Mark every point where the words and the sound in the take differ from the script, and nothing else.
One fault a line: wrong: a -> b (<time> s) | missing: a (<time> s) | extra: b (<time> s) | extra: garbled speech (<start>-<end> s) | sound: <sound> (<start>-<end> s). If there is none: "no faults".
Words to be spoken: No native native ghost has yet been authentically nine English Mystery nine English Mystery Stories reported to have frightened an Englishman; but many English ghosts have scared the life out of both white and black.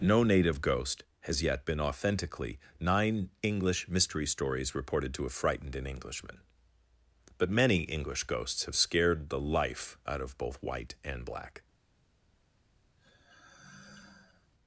missing: native (0.6 s)
missing: nine English Mystery (4.2 s)
sound: sigh (13.0-14.5 s)